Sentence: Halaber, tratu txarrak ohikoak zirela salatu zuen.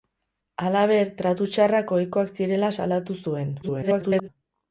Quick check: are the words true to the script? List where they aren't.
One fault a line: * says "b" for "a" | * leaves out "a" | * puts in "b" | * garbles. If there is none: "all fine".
* garbles